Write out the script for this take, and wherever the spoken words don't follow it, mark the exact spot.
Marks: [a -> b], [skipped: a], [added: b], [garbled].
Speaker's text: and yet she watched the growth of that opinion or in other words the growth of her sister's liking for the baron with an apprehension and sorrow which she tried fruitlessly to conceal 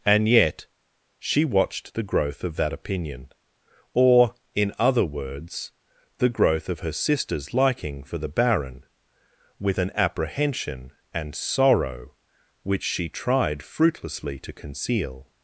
and yet she watched the growth of that opinion or in other words the growth of her sister's liking for the baron with an apprehension and sorrow which she tried fruitlessly to conceal